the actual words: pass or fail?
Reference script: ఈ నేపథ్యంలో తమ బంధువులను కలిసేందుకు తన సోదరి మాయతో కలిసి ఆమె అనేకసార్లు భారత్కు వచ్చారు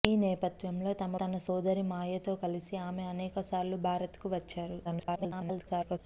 fail